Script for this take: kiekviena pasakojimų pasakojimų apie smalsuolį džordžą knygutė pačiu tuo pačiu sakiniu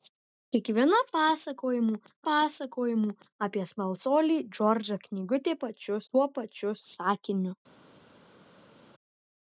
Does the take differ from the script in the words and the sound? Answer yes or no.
no